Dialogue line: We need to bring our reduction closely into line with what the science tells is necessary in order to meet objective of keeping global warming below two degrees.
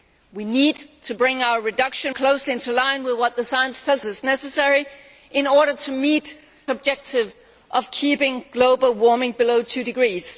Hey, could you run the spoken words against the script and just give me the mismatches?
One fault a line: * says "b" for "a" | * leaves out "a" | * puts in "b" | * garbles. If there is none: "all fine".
all fine